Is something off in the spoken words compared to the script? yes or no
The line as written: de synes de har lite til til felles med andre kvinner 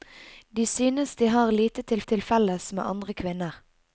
no